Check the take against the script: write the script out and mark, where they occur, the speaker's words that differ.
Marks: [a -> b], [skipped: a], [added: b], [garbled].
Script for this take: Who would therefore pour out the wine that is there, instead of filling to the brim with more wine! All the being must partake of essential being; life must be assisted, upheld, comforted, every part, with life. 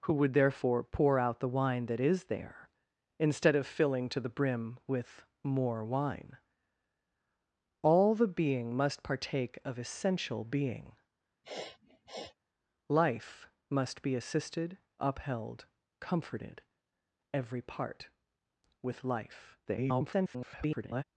Who would therefore pour out the wine that is there, instead of filling to the brim with more wine! All the being must partake of essential being; life must be assisted, upheld, comforted, every part, with life. [garbled]